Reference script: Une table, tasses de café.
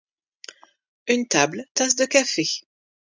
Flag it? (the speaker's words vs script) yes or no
no